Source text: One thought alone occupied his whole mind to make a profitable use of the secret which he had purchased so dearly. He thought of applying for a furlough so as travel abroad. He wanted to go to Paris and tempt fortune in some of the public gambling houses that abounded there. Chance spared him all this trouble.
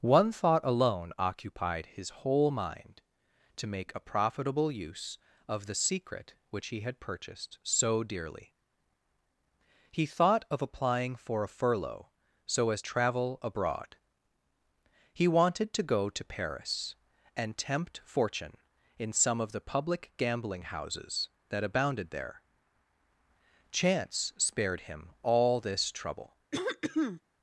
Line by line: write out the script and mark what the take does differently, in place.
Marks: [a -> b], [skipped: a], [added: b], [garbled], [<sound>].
One thought alone occupied his whole mind to make a profitable use of the secret which he had purchased so dearly. He thought of applying for a furlough so as travel abroad. He wanted to go to Paris and tempt fortune in some of the public gambling houses that abounded there. Chance spared him all this trouble. [throat clearing]